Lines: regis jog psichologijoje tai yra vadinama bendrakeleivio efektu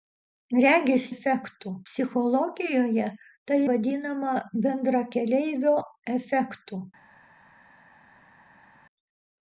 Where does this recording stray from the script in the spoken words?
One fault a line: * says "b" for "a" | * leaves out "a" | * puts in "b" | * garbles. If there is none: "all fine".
* says "efektu" for "jog"
* leaves out "yra"